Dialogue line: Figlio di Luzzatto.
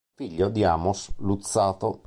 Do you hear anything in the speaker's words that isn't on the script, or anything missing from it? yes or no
yes